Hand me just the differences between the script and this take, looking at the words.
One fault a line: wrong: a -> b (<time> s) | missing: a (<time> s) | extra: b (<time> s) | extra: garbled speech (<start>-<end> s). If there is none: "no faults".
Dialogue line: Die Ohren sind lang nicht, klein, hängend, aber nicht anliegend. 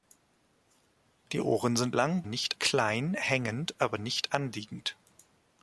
no faults